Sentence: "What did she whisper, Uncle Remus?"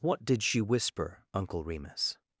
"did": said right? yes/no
yes